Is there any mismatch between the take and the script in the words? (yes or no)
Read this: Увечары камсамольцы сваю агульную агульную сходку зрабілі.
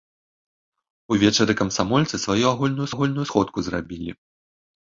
no